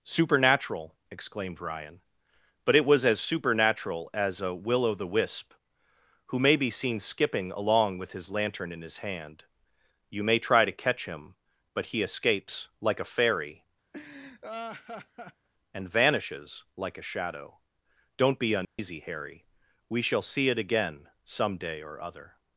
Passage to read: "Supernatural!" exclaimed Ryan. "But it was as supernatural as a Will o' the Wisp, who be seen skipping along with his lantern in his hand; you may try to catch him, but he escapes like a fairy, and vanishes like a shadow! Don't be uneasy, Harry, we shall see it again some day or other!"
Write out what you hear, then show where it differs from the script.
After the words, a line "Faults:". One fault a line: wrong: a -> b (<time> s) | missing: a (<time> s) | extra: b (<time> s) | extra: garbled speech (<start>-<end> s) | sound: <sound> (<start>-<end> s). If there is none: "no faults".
"Supernatural!" exclaimed Ryan. "But it was as supernatural as a Will o' the Wisp, who may be seen skipping along with his lantern in his hand; you may try to catch him, but he escapes like a fairy, and vanishes like a shadow! Don't be uneasy, Harry, we shall see it again some day or other!"
Faults:
extra: may (6.4 s)
sound: laugh (13.9-15.5 s)
sound: dropout (18.6-18.8 s)